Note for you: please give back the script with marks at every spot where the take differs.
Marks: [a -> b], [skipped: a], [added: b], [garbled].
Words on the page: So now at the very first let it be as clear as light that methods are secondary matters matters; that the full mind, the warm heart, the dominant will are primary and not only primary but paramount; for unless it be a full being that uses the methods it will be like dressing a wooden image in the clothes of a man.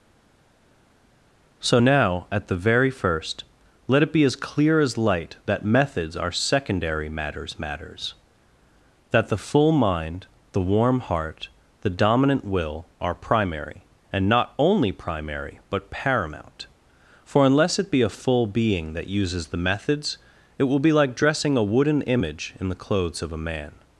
So now at the very first let it be as clear as light that methods are secondary matters matters; that the full mind, the warm heart, the dominant will are primary and not only primary but paramount; for unless it be a full being that uses the methods it will be like dressing a wooden image in the clothes of a man.